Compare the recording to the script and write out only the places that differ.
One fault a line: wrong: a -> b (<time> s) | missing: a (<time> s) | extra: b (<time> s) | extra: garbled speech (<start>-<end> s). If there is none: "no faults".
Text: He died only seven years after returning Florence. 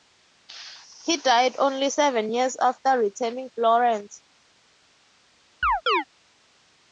no faults